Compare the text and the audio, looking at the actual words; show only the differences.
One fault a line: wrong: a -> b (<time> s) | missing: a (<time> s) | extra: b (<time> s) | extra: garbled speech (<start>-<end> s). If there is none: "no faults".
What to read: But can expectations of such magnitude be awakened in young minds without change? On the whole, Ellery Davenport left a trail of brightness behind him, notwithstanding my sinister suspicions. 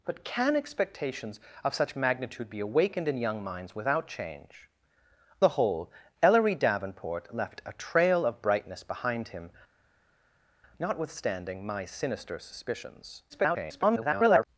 missing: On (4.7 s)
extra: garbled speech (13.3-14.5 s)